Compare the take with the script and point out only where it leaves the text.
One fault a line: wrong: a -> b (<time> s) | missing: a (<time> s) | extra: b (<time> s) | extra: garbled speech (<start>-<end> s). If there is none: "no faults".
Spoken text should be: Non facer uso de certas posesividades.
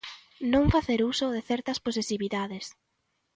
no faults